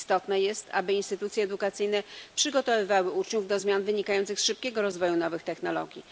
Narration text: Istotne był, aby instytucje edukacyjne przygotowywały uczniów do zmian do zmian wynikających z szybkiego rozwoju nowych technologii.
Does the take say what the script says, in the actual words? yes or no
no